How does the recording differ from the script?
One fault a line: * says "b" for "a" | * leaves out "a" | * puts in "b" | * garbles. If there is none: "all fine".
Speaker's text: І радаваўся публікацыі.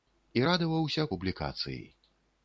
all fine